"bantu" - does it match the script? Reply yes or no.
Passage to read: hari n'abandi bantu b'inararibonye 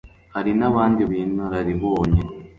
no